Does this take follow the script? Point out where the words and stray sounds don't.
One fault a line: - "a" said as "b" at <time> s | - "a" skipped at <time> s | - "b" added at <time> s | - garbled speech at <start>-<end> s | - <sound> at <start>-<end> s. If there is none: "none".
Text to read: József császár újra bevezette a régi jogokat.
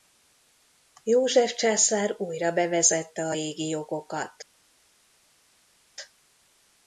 none